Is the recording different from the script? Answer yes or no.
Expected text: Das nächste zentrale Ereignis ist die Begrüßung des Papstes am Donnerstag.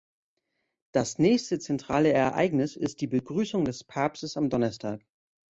no